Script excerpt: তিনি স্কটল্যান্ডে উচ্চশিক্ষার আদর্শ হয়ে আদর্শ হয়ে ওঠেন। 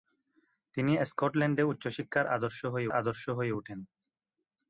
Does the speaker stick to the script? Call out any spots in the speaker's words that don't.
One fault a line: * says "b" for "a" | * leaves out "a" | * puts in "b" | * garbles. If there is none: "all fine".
all fine